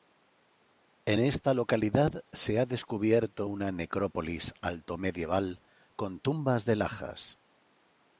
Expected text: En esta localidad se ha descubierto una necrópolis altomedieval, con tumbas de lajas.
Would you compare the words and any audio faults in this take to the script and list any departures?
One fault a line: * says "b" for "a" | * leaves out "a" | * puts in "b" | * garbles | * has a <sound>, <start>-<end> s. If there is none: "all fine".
all fine